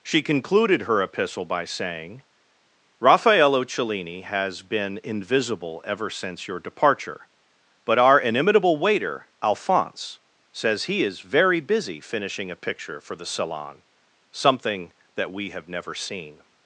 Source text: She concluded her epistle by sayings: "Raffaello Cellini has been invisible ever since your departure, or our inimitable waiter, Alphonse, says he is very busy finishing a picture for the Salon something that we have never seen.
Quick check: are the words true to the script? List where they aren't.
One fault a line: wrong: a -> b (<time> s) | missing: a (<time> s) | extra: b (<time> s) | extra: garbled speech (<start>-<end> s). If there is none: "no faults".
wrong: sayings -> saying (1.6 s)
wrong: or -> but (7.8 s)